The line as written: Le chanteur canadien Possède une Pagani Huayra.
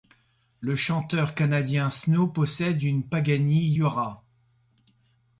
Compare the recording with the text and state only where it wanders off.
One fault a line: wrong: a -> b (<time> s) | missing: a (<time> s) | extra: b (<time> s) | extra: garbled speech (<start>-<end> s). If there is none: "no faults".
extra: Snow (1.9 s)